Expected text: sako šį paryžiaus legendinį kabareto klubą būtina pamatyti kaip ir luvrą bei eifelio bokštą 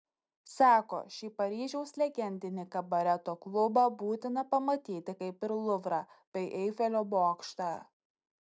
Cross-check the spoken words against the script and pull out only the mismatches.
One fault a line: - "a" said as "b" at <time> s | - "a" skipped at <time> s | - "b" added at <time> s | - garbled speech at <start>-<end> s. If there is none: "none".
none